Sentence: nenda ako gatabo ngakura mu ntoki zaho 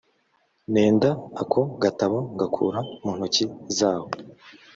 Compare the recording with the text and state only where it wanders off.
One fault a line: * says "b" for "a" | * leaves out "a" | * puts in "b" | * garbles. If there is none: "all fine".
all fine